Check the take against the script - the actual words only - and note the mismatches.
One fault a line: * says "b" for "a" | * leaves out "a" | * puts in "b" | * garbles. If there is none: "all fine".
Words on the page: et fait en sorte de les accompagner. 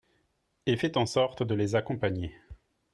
all fine